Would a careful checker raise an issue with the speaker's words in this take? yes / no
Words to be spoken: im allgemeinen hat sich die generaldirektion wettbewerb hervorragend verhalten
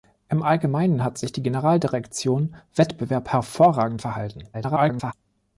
yes